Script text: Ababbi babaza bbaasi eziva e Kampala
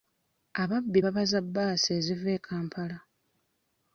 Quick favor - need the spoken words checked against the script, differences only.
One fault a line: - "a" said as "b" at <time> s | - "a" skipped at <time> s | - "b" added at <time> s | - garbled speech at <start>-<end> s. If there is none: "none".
none